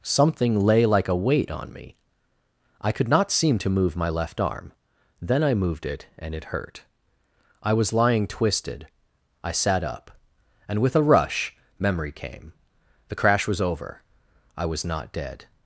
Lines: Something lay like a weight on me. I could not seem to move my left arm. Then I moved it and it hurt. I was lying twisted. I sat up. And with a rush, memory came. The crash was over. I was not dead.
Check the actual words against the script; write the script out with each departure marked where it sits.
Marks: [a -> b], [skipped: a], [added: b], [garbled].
Something lay like a weight on me. I could not seem to move my left arm. Then I moved it and it hurt. I was lying twisted. I sat up. And with a rush, memory came. The crash was over. I was not dead.